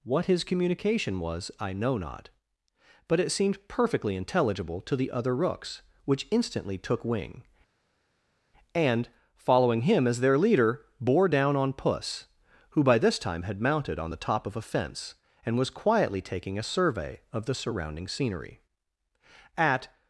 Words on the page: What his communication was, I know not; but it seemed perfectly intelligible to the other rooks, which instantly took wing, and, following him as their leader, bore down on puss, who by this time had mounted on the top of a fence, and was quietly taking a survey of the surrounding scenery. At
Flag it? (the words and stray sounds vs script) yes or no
no